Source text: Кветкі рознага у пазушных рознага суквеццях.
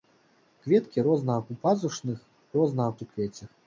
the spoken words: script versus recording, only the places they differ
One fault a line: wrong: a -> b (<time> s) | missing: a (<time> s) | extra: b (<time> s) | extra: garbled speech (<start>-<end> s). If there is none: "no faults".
no faults